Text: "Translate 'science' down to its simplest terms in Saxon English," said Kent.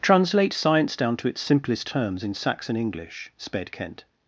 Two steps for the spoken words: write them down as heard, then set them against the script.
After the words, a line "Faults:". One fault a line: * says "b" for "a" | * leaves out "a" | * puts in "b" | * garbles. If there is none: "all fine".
"Translate 'science' down to its simplest terms in Saxon English," sped Kent.
Faults:
* says "sped" for "said"